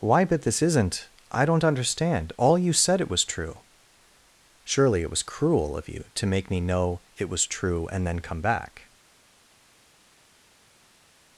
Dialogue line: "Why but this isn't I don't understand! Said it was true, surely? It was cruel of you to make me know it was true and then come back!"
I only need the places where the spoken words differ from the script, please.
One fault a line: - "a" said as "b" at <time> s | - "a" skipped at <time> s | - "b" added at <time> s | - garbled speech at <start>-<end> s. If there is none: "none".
- "All you" added at 2.4 s